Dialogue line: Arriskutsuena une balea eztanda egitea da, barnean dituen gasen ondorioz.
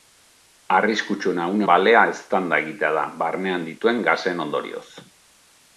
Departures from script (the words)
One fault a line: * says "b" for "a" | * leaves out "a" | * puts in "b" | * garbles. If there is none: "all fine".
all fine